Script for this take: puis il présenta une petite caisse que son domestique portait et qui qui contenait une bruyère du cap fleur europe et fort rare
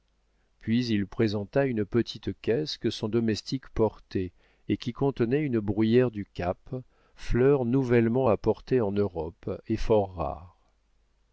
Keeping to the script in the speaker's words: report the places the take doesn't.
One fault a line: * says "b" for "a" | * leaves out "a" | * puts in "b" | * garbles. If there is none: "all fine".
* leaves out "qui"
* puts in "nouvellement apportée en"